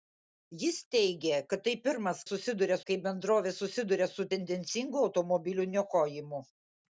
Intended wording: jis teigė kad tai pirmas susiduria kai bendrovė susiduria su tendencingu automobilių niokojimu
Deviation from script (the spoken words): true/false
false